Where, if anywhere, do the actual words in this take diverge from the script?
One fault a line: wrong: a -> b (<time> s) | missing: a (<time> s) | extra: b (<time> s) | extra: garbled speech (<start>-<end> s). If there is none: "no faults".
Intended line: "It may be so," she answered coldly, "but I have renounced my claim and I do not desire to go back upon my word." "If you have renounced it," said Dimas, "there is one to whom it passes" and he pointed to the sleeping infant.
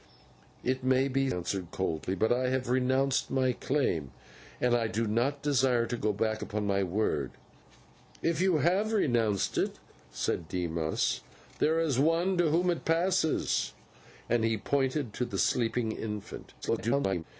missing: so she (1.3 s)
extra: garbled speech (16.6-17.2 s)